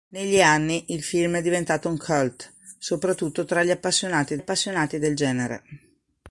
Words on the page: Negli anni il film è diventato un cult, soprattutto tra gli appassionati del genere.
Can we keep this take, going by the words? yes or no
no